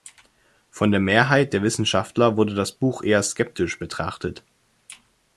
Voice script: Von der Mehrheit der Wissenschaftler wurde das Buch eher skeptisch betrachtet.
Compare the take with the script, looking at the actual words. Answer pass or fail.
pass